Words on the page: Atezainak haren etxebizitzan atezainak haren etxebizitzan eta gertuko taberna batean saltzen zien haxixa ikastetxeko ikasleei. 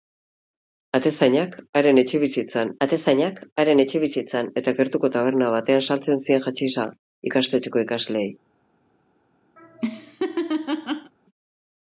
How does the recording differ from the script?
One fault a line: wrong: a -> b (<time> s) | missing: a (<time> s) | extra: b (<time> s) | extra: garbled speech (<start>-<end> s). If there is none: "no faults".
no faults